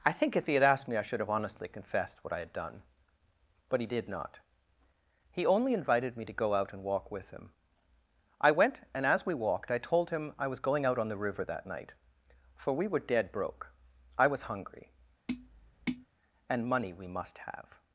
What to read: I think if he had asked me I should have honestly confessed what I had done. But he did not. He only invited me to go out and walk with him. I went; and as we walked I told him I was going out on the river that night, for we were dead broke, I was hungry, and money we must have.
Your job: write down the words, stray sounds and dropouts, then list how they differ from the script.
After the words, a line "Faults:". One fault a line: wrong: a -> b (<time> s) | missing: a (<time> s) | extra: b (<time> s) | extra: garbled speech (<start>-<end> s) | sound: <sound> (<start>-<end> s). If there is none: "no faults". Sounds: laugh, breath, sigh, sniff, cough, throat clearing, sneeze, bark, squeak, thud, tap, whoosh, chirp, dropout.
I think if he had asked me I should have honestly confessed what I had done. But he did not. He only invited me to go out and walk with him. I went; and as we walked I told him I was going out on the river that night, for we were dead broke, I was hungry, and money we must have.
Faults:
sound: tap (15.3-16.1 s)